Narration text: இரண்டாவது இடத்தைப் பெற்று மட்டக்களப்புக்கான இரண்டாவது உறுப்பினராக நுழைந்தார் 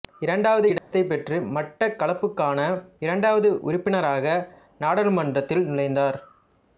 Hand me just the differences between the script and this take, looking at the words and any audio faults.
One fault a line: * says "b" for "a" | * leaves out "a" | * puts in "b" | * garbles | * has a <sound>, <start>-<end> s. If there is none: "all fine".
* has a dropout, 0.8-0.9 s
* puts in "நாடாளுமன்றத்தில்"